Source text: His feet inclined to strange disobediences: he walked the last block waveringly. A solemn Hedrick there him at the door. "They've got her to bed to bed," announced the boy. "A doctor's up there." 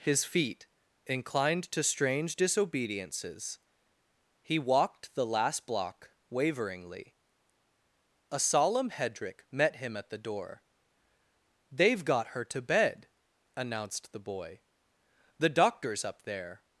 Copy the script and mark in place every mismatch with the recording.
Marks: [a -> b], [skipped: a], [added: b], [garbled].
His feet inclined to strange disobediences: he walked the last block waveringly. A solemn Hedrick [there -> met] him at the door. "They've got her to bed [skipped: to bed,"] announced the boy. ["A -> The] doctor's up there."